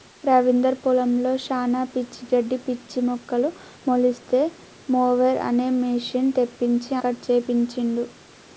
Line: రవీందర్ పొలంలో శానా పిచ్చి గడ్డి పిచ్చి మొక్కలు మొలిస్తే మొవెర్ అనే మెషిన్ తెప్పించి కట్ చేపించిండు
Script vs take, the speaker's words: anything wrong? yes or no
no